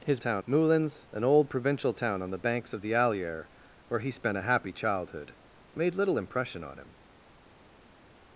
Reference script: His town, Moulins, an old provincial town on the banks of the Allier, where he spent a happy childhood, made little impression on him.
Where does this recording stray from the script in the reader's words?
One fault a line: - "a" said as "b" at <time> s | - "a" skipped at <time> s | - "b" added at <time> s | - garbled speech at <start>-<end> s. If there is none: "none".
none